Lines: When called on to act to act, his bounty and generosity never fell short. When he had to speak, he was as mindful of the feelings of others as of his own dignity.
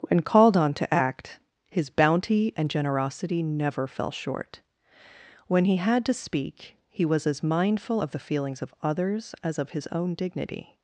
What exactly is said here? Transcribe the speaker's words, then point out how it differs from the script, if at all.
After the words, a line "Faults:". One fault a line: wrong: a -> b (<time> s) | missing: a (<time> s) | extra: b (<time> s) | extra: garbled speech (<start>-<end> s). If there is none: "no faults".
When called on to act, his bounty and generosity never fell short. When he had to speak, he was as mindful of the feelings of others as of his own dignity.
Faults:
missing: to act (1.4 s)